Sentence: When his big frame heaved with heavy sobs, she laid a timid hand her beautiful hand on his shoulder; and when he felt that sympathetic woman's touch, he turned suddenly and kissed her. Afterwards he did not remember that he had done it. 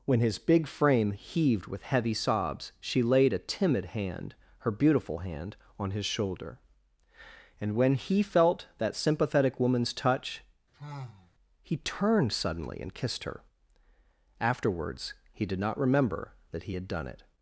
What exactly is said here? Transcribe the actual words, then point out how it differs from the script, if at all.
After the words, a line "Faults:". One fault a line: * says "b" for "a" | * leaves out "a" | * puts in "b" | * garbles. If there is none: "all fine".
When his big frame heaved with heavy sobs, she laid a timid hand her beautiful hand on his shoulder; and when he felt that sympathetic woman's touch, he turned suddenly and kissed her. Afterwards he did not remember that he had done it.
Faults:
all fine